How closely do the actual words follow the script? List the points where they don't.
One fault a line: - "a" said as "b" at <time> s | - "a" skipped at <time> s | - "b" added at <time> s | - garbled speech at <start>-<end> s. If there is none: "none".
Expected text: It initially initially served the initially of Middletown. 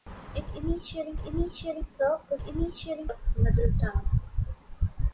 none